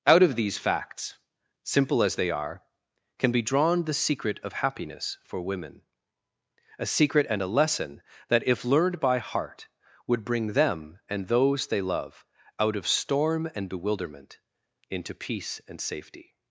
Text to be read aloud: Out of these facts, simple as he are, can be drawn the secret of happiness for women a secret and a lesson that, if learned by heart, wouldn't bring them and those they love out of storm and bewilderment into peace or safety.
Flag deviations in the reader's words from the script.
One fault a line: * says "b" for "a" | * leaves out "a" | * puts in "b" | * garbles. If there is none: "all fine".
* says "they" for "he"
* says "would" for "wouldn't"
* says "and" for "or"